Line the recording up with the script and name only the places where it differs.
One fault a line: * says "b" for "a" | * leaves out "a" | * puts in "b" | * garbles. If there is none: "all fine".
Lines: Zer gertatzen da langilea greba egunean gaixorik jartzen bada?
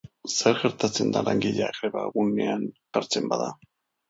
* leaves out "gaixorik"